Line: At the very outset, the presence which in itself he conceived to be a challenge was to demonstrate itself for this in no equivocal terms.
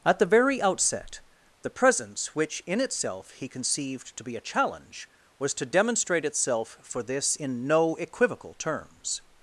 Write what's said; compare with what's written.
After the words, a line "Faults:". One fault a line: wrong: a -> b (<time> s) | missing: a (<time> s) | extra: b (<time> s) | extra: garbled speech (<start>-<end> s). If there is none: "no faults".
At the very outset, the presence which in itself he conceived to be a challenge was to demonstrate itself for this in no equivocal terms.
Faults:
no faults